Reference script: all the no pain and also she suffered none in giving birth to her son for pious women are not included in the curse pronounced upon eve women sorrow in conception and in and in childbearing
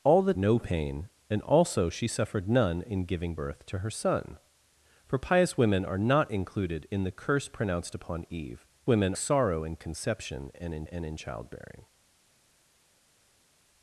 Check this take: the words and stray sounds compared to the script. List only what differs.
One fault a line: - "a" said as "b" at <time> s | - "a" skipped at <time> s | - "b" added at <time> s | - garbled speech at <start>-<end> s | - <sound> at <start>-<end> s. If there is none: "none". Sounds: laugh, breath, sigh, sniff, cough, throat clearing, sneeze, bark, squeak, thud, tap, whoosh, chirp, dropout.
none